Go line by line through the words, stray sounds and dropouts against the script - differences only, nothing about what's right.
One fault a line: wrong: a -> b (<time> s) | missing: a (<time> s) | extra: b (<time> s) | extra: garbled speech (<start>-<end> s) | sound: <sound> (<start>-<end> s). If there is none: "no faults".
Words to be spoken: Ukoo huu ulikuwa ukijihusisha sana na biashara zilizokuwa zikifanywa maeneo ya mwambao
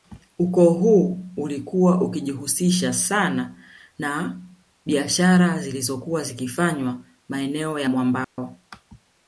sound: dropout (8.2-8.4 s)